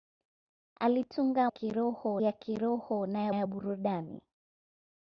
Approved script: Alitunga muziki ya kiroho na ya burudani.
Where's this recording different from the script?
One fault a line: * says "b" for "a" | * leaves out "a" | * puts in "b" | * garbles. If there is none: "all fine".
* says "kiroho" for "muziki"
* puts in "ya"